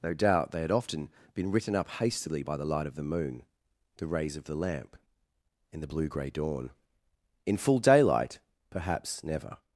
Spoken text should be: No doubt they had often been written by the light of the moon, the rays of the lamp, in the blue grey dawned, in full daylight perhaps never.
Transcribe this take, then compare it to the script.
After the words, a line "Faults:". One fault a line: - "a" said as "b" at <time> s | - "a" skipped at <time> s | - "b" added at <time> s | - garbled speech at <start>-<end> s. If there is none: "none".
No doubt they had often been written up hastily by the light of the moon, the rays of the lamp, in the blue grey dawn, in full daylight perhaps never.
Faults:
- "up hastily" added at 1.8 s
- "dawned" said as "dawn" at 6.3 s